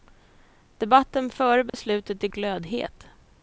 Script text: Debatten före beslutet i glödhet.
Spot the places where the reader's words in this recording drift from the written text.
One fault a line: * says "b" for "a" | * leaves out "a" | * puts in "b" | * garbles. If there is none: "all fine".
all fine